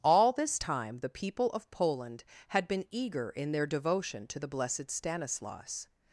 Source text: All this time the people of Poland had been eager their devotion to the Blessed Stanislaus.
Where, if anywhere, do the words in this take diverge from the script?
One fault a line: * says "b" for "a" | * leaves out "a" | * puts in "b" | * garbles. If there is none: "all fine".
* puts in "in"